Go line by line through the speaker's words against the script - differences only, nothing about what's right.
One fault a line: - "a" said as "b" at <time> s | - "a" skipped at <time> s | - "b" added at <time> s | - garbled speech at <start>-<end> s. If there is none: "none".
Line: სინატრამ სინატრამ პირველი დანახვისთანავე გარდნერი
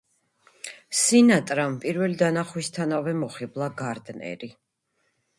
- "სინატრამ" skipped at 1.8 s
- "მოხიბლა" added at 3.2 s